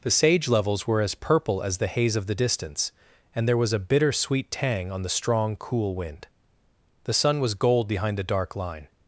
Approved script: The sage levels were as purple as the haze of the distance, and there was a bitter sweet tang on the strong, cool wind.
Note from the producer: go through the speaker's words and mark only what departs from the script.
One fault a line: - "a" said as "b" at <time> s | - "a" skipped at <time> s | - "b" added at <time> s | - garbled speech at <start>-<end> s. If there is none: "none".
- "The sun was gold behind the dark line" added at 7.0 s